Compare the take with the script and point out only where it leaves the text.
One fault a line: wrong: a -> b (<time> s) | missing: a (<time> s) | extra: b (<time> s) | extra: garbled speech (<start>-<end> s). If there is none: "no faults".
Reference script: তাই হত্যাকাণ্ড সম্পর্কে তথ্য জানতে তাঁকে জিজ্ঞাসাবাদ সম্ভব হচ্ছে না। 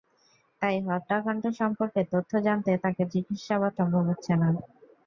no faults